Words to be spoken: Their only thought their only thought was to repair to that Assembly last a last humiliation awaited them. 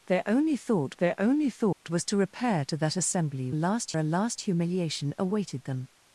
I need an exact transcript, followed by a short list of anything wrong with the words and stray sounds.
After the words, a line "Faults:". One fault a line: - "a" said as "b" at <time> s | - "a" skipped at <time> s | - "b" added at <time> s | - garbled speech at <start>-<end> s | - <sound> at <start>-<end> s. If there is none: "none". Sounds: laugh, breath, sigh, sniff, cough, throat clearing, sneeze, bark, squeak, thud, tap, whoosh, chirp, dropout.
Their only thought their only thought was to repair to that Assembly last a last humiliation awaited them.
Faults:
- dropout at 1.7-1.8 s